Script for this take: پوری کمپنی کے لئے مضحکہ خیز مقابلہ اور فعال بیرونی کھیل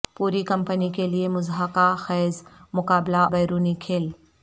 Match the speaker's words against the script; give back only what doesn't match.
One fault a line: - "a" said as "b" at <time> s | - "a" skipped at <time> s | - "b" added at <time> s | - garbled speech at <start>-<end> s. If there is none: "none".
- "اور فعال" skipped at 3.2 s